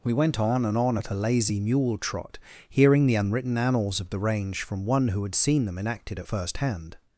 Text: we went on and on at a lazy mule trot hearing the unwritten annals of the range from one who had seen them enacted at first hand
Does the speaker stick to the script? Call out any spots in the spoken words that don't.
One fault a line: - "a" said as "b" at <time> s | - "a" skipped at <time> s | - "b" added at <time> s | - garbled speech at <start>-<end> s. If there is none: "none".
none